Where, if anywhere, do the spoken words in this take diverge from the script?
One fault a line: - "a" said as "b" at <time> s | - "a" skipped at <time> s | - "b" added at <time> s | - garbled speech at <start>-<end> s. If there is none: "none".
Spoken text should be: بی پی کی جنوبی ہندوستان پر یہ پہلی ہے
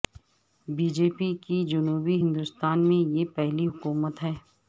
- "جے" added at 0.9 s
- "پر" said as "میں" at 2.9 s
- "حکومت" added at 3.7 s